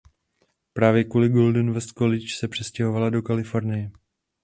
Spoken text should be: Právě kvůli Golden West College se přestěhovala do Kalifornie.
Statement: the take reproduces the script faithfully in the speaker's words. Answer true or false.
true